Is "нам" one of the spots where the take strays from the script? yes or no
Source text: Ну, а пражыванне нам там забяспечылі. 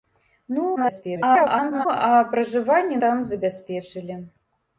yes